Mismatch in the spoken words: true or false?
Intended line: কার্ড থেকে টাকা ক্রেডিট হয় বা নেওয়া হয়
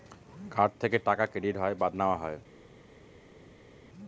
false